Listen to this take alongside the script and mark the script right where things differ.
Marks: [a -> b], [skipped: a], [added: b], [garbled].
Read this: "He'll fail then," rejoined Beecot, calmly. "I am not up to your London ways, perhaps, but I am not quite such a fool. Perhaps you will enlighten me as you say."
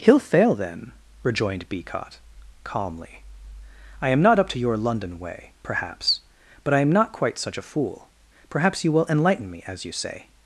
"He'll fail then," rejoined Beecot, calmly. "I am not up to your London [ways, -> way] perhaps, but I am not quite such a fool. Perhaps you will enlighten me as you say."